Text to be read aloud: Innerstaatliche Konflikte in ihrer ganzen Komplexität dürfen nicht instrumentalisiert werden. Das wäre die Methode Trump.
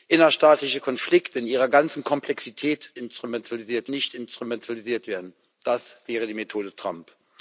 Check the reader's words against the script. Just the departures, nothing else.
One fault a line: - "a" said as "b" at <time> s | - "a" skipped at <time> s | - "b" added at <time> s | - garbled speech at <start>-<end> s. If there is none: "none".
- "dürfen" said as "instrumentalisiert" at 3.0 s